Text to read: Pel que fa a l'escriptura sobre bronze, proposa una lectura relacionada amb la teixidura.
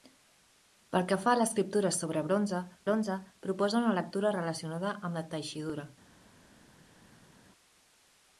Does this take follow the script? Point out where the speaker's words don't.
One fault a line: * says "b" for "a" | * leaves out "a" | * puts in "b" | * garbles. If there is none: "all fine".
* puts in "bronze"